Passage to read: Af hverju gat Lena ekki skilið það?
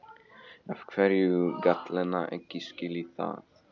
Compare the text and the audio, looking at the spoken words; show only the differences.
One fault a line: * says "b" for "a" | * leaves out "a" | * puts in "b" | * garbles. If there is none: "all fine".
all fine